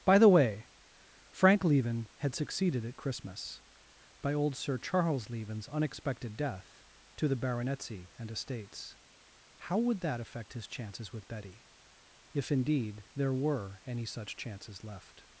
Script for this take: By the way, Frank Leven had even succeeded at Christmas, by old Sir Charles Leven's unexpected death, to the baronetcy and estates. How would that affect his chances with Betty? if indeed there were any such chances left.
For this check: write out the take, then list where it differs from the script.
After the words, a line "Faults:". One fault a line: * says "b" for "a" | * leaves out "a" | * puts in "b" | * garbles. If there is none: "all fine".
By the way, Frank Leven had succeeded at Christmas, by old Sir Charles Leven's unexpected death, to the baronetcy and estates. How would that affect his chances with Betty? if indeed there were any such chances left.
Faults:
* leaves out "even"